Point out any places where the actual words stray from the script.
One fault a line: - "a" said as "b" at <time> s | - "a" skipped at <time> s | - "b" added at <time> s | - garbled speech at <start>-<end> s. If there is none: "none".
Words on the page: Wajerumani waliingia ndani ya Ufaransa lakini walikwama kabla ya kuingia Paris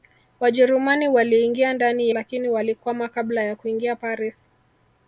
- "ya Ufaransa" skipped at 2.1 s